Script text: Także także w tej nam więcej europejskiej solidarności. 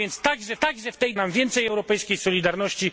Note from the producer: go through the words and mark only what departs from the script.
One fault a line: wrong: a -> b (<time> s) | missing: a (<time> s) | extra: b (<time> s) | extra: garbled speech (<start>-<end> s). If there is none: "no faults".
no faults